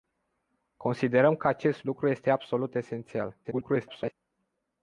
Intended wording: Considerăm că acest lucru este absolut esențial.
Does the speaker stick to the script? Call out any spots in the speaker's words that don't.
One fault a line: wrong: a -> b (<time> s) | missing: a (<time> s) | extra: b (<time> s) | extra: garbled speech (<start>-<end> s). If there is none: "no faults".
extra: garbled speech (3.4-4.1 s)